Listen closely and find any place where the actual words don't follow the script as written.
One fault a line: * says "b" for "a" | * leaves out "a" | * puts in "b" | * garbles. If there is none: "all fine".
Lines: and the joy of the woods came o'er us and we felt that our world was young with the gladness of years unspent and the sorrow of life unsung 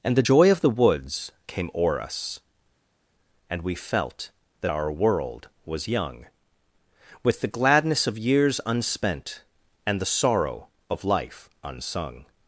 all fine